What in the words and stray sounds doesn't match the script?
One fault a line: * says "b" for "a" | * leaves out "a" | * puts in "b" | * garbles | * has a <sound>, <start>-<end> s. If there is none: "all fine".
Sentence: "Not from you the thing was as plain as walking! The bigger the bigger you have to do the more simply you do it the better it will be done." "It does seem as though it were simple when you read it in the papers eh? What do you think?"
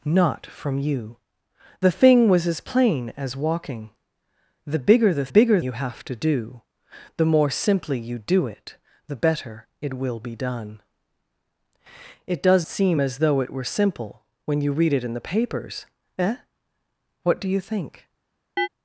* has a chirp, 18.6-18.7 s